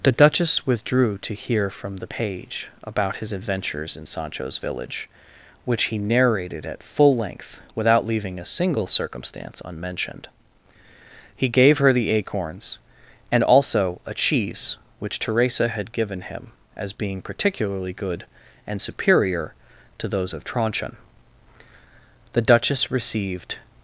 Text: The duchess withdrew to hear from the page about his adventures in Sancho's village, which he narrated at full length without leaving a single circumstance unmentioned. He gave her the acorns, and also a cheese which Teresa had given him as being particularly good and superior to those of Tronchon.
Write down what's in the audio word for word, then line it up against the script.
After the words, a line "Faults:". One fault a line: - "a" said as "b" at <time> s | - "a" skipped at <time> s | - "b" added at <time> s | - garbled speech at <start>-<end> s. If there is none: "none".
The duchess withdrew to hear from the page about his adventures in Sancho's village, which he narrated at full length without leaving a single circumstance unmentioned. He gave her the acorns, and also a cheese which Teresa had given him as being particularly good and superior to those of Tronchon. The duchess received
Faults:
- "The duchess received" added at 22.3 s